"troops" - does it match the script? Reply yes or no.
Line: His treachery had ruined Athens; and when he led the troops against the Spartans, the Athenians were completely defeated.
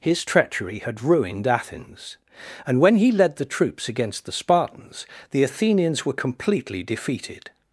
yes